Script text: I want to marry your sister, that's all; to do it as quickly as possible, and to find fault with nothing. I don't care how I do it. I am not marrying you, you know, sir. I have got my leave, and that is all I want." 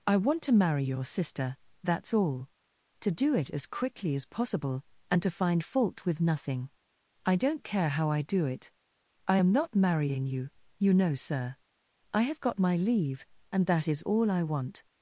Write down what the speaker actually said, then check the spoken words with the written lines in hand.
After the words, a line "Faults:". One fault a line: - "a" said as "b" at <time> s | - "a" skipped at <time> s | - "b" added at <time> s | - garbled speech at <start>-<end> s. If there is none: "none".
I want to marry your sister, that's all; to do it as quickly as possible, and to find fault with nothing. I don't care how I do it. I am not marrying you, you know, sir. I have got my leave, and that is all I want."
Faults:
none